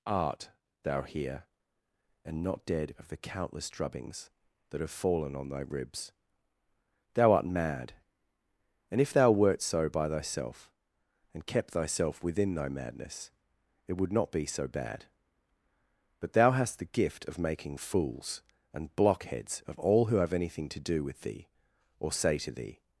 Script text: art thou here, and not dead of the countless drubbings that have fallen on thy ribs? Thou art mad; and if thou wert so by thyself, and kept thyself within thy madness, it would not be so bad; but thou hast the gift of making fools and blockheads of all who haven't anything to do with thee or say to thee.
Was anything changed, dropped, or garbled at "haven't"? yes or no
yes